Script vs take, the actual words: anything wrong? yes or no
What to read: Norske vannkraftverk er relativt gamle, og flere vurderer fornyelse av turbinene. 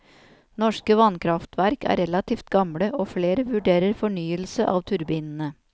no